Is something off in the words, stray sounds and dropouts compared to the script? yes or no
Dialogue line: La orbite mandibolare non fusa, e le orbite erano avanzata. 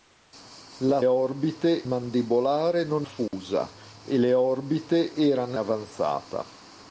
yes